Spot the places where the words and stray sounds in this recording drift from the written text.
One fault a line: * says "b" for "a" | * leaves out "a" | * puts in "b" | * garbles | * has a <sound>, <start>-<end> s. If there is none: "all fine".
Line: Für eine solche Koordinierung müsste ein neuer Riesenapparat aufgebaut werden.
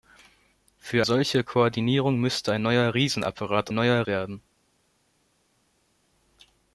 * leaves out "eine"
* says "neuer" for "aufgebaut"